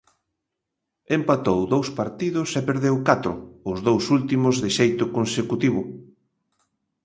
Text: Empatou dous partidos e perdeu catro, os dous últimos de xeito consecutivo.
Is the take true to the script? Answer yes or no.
yes